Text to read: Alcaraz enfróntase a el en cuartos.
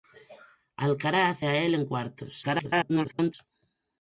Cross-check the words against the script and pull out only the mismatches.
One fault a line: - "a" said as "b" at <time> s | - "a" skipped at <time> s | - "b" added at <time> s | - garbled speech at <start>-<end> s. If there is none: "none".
- "enfróntase" skipped at 1.4 s
- garbled speech at 2.4-3.3 s